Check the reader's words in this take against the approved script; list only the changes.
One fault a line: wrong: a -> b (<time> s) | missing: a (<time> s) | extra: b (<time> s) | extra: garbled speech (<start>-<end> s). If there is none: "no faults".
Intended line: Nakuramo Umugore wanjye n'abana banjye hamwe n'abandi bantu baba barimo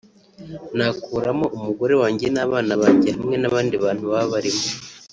no faults